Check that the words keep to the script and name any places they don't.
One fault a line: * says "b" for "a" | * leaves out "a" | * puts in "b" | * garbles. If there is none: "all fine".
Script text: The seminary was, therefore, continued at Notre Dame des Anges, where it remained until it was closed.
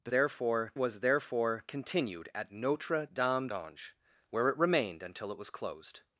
* says "therefore" for "seminary"
* leaves out "des"